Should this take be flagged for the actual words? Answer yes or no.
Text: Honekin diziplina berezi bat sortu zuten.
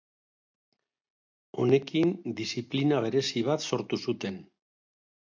no